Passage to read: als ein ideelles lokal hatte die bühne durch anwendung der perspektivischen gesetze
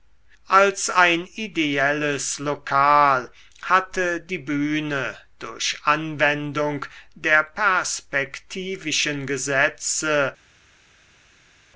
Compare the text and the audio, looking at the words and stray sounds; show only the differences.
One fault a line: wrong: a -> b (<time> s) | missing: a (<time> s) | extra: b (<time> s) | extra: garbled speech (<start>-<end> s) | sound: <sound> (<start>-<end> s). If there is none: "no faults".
no faults